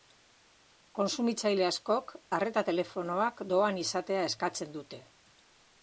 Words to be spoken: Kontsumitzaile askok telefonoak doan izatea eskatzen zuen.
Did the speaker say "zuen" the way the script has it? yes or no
no